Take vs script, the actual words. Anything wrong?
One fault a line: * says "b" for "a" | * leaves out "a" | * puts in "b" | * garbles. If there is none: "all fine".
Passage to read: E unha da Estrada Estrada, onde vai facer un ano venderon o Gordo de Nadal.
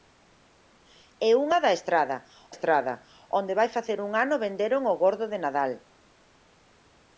all fine